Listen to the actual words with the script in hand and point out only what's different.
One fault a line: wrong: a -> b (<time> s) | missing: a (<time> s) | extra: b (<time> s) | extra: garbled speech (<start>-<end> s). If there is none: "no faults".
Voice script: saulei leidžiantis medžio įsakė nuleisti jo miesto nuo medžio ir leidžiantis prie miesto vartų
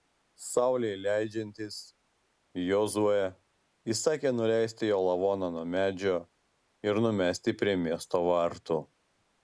wrong: medžio -> jozuė (2.7 s)
wrong: miesto -> lavoną (5.1 s)
wrong: leidžiantis -> numesti (7.1 s)